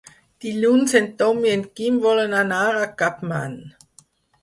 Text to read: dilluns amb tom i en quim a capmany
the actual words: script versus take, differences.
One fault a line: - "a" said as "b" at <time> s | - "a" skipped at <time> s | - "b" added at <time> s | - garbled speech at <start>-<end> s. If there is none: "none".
- "amb" said as "en" at 1.0 s
- "volen anar" added at 2.1 s